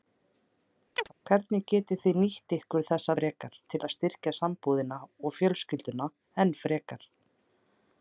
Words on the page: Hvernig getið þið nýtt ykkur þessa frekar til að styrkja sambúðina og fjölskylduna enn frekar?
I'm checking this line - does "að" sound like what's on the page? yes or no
yes